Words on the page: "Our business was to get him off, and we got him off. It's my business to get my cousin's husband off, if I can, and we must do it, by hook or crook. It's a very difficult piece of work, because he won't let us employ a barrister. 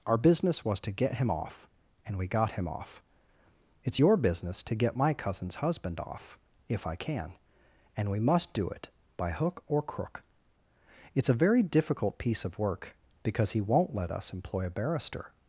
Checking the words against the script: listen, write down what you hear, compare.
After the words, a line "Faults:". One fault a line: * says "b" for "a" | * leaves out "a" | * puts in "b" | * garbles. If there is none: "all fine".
"Our business was to get him off, and we got him off. It's your business to get my cousin's husband off, if I can, and we must do it, by hook or crook. It's a very difficult piece of work, because he won't let us employ a barrister.
Faults:
* says "your" for "my"